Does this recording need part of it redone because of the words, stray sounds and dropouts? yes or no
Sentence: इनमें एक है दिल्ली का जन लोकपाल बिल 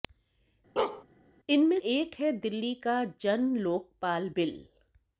yes